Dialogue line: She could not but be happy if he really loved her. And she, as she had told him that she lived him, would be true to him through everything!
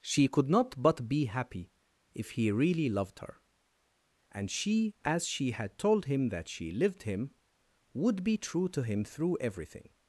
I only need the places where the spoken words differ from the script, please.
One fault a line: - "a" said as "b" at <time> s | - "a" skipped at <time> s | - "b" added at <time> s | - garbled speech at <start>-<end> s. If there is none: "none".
none